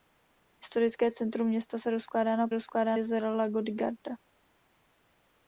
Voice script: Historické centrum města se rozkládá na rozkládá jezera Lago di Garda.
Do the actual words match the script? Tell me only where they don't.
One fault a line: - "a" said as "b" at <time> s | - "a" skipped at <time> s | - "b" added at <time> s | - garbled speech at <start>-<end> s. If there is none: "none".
none